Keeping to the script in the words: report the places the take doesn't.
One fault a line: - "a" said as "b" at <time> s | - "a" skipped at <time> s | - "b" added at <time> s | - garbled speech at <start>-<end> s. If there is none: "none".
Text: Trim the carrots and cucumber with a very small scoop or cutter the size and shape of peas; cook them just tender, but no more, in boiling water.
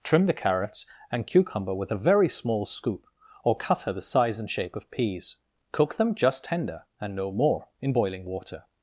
- "but" said as "and" at 7.0 s